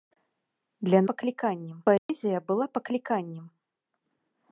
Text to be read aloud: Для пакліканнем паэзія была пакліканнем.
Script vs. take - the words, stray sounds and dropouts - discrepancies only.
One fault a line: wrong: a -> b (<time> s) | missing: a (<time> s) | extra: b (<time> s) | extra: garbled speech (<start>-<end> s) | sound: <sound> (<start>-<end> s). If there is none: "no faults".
sound: dropout (2.0-2.1 s)